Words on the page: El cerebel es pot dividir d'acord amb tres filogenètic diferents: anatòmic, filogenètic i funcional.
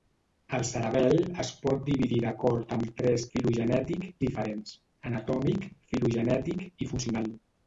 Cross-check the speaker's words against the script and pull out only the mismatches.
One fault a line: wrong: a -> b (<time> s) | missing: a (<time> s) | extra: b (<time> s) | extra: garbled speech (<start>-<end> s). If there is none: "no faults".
no faults